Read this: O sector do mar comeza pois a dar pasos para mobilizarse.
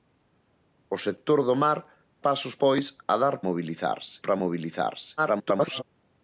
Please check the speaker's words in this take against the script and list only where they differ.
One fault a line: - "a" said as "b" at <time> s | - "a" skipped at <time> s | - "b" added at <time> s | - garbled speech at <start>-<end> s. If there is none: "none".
- "comeza" said as "pasos" at 2.3 s
- "pasos" said as "mobilizarse" at 3.5 s
- garbled speech at 5.2-5.8 s